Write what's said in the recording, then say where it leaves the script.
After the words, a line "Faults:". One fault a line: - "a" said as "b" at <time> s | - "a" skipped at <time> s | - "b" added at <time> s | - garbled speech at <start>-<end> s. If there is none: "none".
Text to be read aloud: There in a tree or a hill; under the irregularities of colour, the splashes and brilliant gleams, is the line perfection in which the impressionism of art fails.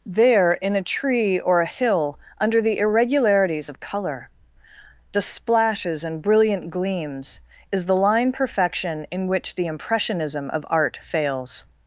There in a tree or a hill; under the irregularities of colour, the splashes and brilliant gleams, is the line perfection in which the impressionism of art fails.
Faults:
none